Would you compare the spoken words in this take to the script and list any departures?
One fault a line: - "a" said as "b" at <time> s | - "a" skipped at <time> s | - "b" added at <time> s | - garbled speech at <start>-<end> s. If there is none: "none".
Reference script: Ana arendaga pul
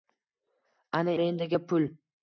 none